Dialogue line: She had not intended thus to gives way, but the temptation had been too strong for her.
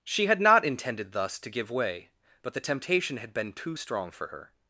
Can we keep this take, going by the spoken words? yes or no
no